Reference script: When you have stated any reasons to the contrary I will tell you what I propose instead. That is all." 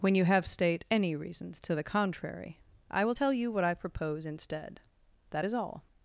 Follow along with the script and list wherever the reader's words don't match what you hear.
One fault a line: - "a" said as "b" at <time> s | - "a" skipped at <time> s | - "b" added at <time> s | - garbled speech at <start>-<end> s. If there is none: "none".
- "stated" said as "state" at 0.5 s